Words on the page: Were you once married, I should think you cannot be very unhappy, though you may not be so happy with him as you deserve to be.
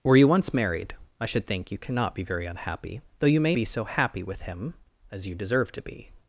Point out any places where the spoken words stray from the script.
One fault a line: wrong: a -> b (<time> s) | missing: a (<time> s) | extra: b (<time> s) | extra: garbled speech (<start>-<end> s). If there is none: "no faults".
missing: not (3.5 s)